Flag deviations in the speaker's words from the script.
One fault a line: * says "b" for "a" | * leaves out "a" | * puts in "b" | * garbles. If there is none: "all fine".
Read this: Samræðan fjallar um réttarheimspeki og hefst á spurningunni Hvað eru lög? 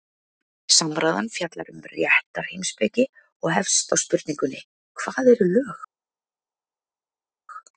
all fine